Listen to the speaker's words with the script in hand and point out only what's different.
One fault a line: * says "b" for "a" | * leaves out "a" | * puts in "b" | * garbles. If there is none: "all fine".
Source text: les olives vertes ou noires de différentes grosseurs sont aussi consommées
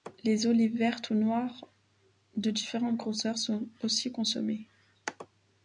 all fine